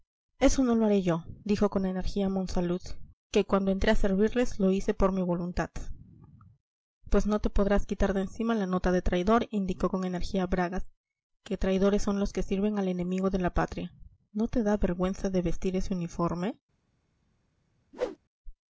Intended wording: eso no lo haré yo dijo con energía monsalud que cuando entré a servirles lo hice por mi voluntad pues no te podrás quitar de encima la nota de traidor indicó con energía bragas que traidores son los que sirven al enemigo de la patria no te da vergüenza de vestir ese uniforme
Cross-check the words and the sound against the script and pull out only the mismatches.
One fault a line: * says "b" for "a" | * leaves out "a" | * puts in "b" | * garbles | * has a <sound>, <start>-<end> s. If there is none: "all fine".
* has a whoosh, 17.9-18.2 s